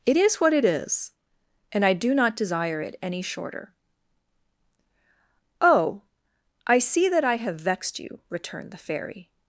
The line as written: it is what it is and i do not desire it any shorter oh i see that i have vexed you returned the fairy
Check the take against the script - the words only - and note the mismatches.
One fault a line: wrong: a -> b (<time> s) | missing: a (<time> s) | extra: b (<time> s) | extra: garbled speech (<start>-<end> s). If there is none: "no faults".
no faults